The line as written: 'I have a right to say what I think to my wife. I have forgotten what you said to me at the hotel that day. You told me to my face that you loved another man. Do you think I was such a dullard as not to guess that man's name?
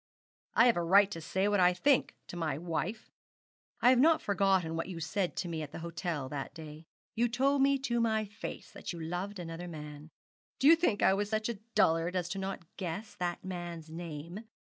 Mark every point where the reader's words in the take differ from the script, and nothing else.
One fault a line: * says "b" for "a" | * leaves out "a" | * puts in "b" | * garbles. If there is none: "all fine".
* puts in "not"